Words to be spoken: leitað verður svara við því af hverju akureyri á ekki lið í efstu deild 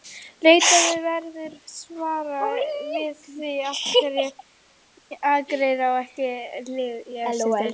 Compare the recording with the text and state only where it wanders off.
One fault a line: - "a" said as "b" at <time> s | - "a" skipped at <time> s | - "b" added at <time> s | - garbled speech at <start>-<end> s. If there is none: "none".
none